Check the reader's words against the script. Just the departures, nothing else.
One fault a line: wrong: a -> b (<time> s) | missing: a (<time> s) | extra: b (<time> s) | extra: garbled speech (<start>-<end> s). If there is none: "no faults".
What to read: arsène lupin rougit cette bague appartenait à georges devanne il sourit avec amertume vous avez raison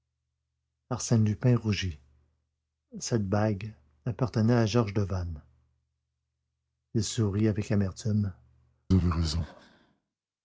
missing: vous (8.3 s)